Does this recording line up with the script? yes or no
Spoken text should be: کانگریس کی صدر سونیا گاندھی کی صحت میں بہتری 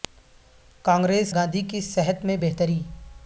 no